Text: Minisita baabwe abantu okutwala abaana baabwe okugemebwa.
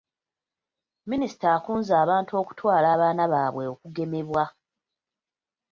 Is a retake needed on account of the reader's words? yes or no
yes